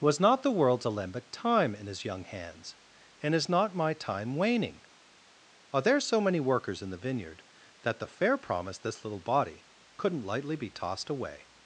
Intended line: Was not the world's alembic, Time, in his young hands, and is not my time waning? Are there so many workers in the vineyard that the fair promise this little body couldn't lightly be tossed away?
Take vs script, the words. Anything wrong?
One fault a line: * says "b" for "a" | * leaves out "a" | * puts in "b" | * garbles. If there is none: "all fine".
all fine